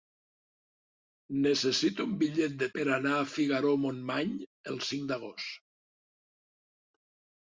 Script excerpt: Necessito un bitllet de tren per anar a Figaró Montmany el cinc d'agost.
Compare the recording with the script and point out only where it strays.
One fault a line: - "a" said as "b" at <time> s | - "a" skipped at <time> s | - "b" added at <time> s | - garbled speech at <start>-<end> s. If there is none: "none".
- "tren" skipped at 2.7 s